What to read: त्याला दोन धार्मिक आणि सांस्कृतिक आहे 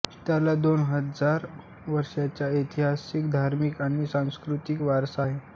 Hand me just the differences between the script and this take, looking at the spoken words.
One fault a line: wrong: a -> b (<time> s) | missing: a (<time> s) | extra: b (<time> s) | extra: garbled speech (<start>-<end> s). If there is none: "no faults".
extra: हजार वर्षांचा ऐतिहासिक (0.8 s)
extra: वारसा (4.8 s)